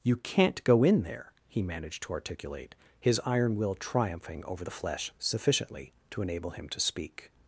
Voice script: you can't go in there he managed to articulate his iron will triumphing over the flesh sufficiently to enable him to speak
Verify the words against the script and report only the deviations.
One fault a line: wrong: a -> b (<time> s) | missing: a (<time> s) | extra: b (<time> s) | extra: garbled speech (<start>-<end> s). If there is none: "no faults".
no faults